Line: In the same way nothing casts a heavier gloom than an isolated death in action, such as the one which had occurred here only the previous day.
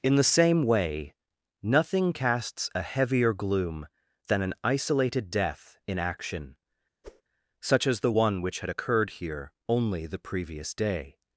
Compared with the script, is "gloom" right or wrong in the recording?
right